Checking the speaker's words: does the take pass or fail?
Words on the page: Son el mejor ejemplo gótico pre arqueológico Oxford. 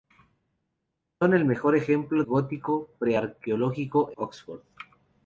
pass